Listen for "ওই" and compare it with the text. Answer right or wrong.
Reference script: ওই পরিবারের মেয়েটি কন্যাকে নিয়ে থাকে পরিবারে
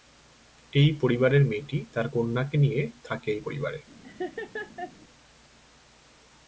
wrong